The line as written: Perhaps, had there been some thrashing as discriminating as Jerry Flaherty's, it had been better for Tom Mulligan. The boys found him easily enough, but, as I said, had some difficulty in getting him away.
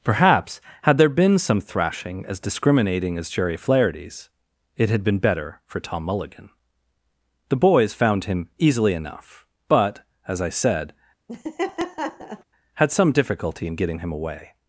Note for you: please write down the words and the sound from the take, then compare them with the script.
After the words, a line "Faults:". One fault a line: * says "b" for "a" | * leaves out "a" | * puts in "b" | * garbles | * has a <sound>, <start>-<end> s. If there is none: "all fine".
Perhaps, had there been some thrashing as discriminating as Jerry Flaherty's, it had been better for Tom Mulligan. The boys found him easily enough, but, as I said, had some difficulty in getting him away.
Faults:
* has a laugh, 11.3-12.4 s